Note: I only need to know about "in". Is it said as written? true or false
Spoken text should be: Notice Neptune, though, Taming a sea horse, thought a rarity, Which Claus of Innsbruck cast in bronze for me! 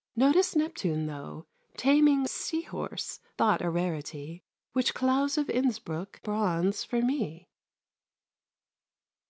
false